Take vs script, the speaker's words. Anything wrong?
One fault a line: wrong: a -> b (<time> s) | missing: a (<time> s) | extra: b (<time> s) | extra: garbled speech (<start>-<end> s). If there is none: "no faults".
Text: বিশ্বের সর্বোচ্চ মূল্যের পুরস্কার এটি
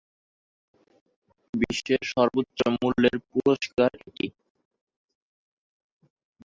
no faults